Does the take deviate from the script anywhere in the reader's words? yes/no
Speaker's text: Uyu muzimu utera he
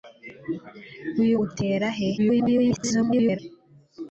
yes